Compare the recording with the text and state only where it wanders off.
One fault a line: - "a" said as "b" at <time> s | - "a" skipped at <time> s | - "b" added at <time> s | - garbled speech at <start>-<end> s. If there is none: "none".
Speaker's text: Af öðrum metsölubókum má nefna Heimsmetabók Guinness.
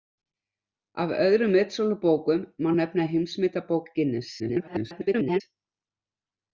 - garbled speech at 4.4-5.4 s